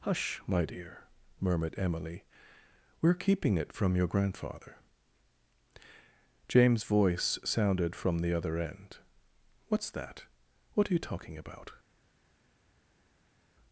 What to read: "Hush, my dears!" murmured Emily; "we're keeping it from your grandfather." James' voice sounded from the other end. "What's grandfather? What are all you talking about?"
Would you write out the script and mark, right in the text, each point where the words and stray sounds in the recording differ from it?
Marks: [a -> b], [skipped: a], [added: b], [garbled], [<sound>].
"Hush, my [dears!" -> dear] murmured Emily; "we're keeping it from your grandfather." James' voice sounded from the other end. "What's [grandfather? -> that] What are [skipped: all] you talking about?"